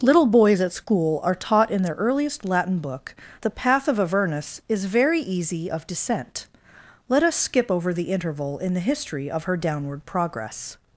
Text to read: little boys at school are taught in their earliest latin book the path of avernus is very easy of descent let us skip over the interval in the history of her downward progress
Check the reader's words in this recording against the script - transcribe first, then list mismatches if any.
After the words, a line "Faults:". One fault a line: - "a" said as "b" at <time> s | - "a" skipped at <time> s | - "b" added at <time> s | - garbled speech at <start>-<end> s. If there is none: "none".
little boys at school are taught in their earliest latin book the path of avernus is very easy of descent let us skip over the interval in the history of her downward progress
Faults:
none